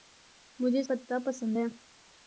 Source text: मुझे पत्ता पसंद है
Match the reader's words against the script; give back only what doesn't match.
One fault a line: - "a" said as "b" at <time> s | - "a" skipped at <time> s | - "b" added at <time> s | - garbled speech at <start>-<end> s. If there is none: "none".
none